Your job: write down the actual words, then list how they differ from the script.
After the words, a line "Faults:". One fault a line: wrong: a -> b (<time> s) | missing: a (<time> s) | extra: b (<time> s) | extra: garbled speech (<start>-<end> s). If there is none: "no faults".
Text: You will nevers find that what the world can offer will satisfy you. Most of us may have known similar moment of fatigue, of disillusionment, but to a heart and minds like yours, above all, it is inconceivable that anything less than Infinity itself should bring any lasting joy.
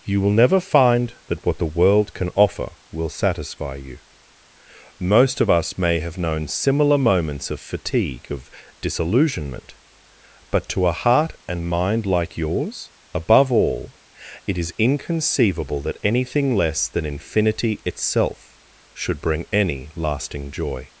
You will never find that what the world can offer will satisfy you. Most of us may have known similar moments of fatigue, of disillusionment, but to a heart and mind like yours, above all, it is inconceivable that anything less than Infinity itself should bring any lasting joy.
Faults:
wrong: nevers -> never (0.3 s)
wrong: moment -> moments (7.0 s)
wrong: minds -> mind (11.7 s)